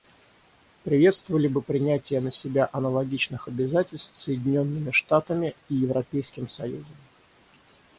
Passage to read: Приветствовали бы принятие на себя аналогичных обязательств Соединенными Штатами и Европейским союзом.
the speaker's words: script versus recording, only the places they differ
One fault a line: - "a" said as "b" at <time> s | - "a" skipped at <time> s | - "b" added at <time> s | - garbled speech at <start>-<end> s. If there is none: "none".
none